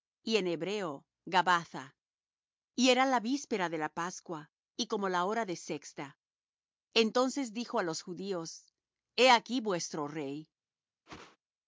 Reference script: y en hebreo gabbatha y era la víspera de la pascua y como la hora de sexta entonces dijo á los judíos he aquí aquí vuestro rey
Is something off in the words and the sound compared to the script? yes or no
yes